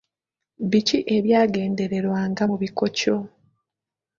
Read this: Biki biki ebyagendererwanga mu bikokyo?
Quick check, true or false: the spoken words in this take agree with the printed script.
false